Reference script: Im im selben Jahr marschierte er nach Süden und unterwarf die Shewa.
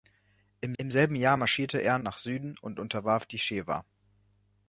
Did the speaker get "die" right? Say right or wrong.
right